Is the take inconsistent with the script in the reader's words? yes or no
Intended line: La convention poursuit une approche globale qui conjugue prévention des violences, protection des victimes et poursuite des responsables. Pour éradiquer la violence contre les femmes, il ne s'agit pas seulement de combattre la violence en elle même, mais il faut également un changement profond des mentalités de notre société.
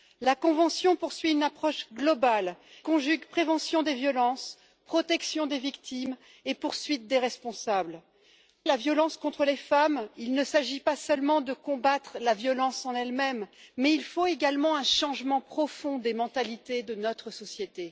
yes